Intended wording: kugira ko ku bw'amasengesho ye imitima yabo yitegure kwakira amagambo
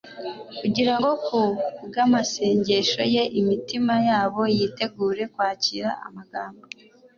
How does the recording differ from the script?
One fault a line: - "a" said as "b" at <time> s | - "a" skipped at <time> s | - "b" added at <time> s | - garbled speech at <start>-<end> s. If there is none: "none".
- "ko" said as "ngo" at 1.0 s